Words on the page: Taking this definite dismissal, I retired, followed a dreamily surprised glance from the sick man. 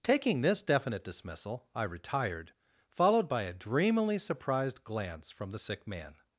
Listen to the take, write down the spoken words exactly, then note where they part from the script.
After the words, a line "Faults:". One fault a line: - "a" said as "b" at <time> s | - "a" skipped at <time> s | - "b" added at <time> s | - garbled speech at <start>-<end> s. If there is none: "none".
Taking this definite dismissal, I retired, followed by a dreamily surprised glance from the sick man.
Faults:
- "by" added at 3.3 s